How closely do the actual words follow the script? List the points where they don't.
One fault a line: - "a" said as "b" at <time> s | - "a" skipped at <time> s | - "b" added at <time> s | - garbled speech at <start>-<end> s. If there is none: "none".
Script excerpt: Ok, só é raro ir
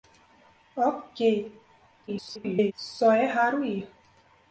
- garbled speech at 2.1-2.7 s